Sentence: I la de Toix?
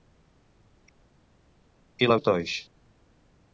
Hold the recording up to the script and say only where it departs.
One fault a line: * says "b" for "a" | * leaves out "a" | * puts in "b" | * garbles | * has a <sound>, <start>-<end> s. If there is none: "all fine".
all fine